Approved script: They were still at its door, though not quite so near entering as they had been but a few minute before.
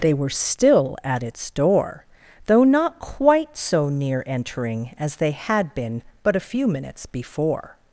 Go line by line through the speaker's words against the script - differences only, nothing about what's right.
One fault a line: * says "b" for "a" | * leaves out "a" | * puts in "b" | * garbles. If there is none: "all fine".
* says "minutes" for "minute"